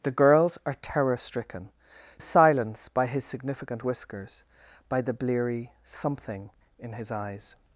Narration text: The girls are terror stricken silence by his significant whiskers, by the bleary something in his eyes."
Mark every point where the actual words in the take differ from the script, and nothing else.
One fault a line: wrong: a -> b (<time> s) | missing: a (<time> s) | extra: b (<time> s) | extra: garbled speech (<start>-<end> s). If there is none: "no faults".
no faults